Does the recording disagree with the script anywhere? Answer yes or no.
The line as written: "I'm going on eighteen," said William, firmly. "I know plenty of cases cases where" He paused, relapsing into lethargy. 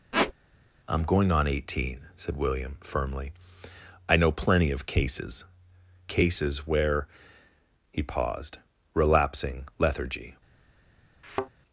yes